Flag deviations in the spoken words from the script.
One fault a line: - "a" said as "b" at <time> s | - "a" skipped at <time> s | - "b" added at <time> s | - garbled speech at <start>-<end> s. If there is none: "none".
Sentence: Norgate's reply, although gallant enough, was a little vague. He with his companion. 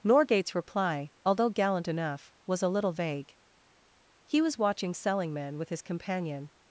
- "was watching Selingman" added at 4.4 s